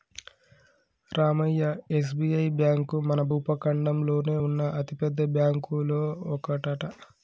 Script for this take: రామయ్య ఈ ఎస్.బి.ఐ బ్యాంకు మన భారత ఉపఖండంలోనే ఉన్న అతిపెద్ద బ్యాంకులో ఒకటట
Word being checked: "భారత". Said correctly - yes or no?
no